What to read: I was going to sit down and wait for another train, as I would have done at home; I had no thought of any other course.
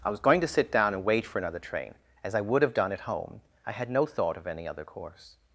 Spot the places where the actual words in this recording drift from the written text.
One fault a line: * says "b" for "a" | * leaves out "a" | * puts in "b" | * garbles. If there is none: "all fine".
all fine